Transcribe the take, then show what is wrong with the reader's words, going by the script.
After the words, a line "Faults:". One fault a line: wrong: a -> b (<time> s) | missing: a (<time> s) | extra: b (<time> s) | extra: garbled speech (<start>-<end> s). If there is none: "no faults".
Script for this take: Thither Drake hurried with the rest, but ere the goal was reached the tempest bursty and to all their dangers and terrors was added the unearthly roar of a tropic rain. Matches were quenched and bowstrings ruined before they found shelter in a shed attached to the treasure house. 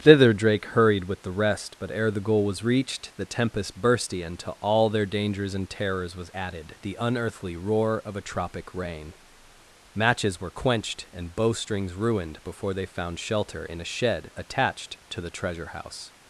Thither Drake hurried with the rest, but ere the goal was reached the tempest bursty and to all their dangers and terrors was added the unearthly roar of a tropic rain. Matches were quenched and bowstrings ruined before they found shelter in a shed attached to the treasure house.
Faults:
no faults